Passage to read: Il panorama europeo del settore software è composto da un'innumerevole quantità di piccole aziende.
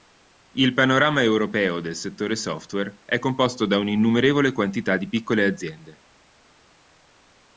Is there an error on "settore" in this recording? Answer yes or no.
no